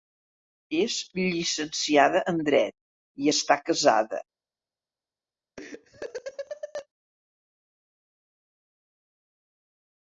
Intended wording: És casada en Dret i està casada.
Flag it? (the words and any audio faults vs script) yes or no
yes